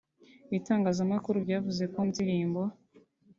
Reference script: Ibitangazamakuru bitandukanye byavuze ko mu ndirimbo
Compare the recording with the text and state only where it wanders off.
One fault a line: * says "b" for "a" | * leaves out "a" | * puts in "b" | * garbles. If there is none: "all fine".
* leaves out "bitandukanye"
* leaves out "mu"